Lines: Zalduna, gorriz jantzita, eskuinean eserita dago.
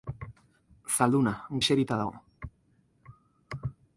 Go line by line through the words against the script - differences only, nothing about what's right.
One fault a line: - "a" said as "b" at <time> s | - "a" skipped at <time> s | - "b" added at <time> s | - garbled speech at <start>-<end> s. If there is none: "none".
- "gorriz jantzita eskuinean" skipped at 1.3 s